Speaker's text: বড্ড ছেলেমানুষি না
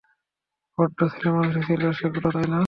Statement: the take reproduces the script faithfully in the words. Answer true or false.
false